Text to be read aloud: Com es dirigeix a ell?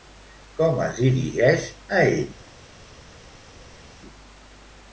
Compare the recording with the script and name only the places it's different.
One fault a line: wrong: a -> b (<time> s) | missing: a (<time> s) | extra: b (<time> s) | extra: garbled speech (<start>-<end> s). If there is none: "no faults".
no faults